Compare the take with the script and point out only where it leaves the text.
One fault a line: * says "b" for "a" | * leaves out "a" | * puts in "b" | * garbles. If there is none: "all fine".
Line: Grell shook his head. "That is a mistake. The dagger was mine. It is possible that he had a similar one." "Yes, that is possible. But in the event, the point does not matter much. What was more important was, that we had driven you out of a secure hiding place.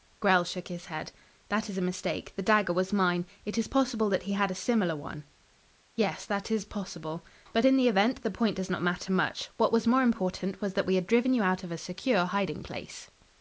all fine